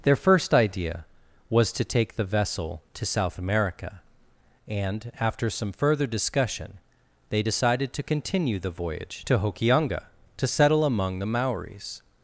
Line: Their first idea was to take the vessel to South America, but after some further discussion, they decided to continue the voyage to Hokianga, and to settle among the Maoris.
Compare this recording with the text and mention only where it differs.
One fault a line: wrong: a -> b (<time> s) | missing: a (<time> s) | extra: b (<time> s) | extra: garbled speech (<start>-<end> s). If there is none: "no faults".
wrong: but -> and (4.7 s)
missing: and (10.0 s)